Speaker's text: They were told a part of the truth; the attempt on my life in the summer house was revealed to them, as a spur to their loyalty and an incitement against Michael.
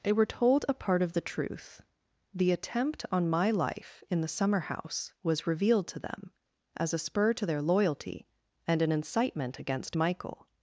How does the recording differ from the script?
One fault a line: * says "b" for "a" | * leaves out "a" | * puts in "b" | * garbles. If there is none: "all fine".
all fine